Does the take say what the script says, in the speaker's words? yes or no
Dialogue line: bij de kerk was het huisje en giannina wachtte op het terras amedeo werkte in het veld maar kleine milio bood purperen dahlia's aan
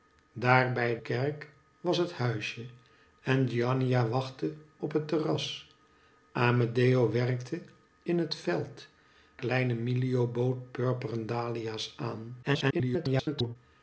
no